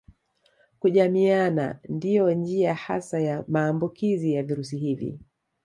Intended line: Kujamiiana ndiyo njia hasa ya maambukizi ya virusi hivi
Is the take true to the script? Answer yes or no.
yes